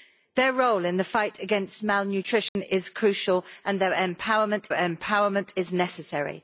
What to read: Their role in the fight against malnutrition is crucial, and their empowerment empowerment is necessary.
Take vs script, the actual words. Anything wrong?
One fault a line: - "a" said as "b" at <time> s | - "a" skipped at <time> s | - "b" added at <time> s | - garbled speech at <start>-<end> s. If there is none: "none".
none